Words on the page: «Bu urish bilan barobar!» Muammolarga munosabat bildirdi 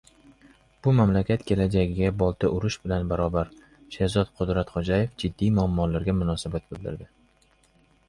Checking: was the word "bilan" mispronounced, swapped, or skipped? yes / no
no